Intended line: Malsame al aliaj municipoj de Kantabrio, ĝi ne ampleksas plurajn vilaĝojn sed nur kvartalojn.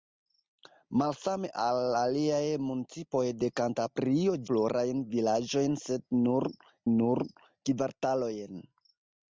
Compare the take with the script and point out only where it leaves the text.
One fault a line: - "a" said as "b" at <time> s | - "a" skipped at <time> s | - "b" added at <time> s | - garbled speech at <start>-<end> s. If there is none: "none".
- "ĝi ne ampleksas" skipped at 4.3 s
- "nur" added at 7.0 s